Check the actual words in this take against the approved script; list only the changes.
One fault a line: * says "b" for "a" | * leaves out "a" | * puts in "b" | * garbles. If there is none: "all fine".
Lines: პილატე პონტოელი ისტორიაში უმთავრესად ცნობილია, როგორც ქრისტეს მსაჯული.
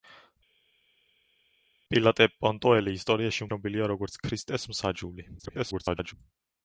* leaves out "უმთავრესად"
* garbles